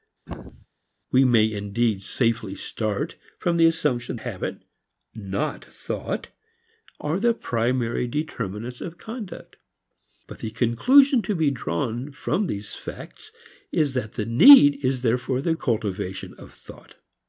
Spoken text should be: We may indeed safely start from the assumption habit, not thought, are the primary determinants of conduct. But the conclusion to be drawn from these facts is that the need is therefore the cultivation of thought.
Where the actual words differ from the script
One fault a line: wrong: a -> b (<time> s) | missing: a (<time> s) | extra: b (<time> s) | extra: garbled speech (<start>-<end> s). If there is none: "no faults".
no faults